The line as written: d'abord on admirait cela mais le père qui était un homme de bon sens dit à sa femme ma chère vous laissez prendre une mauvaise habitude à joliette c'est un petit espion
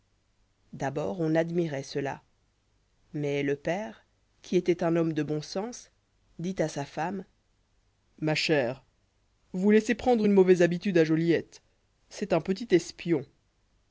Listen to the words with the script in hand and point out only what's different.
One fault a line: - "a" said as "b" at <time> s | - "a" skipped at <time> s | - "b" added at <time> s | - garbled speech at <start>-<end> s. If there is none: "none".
none